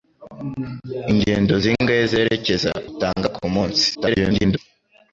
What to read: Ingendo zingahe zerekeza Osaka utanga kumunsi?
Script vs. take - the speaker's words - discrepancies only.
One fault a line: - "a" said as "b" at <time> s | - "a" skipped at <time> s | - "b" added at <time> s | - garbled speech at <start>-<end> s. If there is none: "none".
- "Osaka" skipped at 2.7 s
- garbled speech at 3.9-4.6 s